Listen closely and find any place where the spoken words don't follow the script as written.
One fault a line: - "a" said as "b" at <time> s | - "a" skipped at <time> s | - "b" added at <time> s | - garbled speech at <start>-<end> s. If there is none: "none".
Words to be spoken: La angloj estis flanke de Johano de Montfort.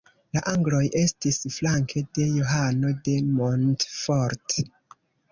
none